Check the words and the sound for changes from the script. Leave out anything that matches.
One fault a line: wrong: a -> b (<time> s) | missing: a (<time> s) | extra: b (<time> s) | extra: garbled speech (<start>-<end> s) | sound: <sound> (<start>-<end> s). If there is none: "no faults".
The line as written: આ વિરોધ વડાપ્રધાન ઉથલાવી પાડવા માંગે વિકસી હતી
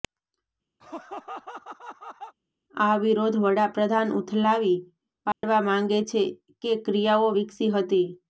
sound: laugh (0.8-2.4 s)
sound: dropout (5.3-5.4 s)
extra: છે કે ક્રિયાઓ (6.1 s)